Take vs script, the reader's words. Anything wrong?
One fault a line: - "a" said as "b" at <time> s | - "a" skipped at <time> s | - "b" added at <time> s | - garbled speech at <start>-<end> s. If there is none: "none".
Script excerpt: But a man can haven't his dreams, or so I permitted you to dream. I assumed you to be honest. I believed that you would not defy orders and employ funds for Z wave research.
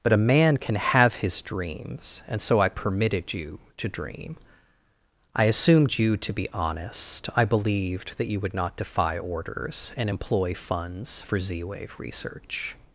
- "haven't" said as "have" at 0.8 s
- "or" said as "and" at 2.3 s